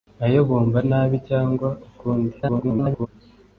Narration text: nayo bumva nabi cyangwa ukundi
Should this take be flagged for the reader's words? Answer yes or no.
yes